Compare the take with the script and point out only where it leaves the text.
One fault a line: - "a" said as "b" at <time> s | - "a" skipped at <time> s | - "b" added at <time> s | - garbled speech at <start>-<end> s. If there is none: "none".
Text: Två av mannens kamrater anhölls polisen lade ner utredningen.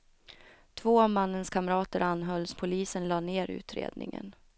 none